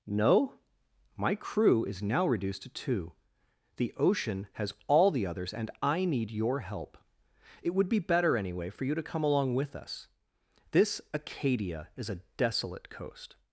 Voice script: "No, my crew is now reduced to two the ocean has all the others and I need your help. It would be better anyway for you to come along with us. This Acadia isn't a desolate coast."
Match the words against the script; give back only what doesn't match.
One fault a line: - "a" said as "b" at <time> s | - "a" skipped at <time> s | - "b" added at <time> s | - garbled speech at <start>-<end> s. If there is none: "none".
- "isn't" said as "is" at 11.9 s